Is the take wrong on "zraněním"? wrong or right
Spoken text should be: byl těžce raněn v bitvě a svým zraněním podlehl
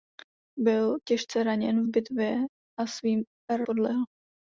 wrong